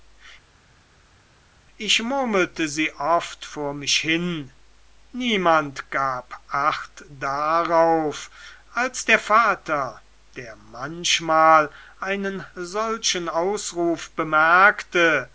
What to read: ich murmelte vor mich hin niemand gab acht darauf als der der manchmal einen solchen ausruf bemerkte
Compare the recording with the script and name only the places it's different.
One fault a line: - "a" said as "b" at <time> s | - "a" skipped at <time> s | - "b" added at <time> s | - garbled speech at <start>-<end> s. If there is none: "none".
- "sie oft" added at 2.7 s
- "vater" added at 9.2 s